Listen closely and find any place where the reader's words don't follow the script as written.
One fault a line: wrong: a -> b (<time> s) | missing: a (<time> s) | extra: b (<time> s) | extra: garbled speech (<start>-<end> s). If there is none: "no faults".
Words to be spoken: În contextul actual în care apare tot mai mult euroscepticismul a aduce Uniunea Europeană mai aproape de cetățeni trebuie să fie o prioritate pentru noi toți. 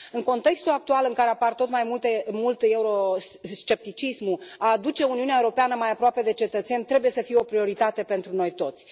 no faults